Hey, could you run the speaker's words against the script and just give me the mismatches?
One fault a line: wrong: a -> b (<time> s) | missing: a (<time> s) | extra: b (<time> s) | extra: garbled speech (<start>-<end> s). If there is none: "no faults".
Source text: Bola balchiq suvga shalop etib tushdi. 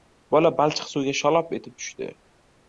no faults